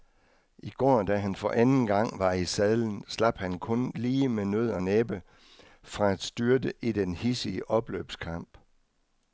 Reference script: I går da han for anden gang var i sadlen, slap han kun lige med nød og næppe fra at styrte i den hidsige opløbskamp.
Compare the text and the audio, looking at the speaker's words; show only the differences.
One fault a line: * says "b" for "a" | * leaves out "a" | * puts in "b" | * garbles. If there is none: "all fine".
all fine